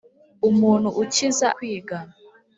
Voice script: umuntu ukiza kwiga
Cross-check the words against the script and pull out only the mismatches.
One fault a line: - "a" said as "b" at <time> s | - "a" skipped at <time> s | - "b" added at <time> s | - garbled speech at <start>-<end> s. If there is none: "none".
none